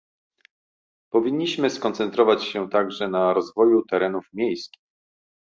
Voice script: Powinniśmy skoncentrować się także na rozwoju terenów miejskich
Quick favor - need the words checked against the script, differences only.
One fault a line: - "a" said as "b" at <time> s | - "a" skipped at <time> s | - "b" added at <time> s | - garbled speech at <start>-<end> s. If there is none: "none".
none